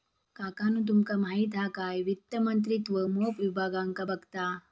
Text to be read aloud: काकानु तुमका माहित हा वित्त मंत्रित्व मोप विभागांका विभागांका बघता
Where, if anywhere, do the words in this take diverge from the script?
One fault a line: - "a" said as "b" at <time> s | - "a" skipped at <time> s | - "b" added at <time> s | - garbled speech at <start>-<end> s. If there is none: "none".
- "काय" added at 1.8 s
- "विभागांका" skipped at 4.0 s